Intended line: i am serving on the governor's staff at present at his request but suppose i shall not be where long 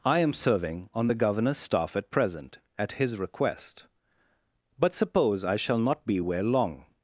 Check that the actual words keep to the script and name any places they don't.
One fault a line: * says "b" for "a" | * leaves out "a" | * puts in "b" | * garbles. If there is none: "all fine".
all fine